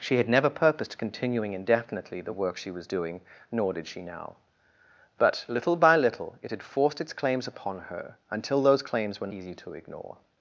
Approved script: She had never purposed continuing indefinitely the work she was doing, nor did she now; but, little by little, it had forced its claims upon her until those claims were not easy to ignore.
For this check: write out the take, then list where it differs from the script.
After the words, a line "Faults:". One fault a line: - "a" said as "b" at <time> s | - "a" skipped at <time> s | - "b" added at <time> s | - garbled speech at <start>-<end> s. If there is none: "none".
She had never purposed continuing indefinitely the work she was doing, nor did she now; but, little by little, it had forced its claims upon her until those claims were easy to ignore.
Faults:
- "not" skipped at 9.3 s